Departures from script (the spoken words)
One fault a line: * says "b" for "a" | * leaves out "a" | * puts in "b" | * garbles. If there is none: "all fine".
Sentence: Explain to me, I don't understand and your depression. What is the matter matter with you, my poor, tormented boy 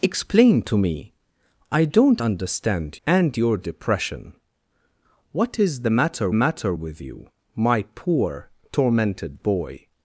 all fine